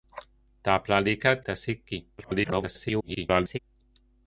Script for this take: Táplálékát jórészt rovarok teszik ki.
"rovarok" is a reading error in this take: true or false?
true